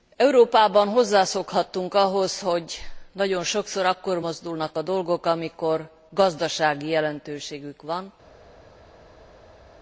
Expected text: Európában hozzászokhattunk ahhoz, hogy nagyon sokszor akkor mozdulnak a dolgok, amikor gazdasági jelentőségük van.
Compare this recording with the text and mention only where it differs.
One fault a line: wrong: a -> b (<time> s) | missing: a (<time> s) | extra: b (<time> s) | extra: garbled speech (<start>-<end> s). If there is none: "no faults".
no faults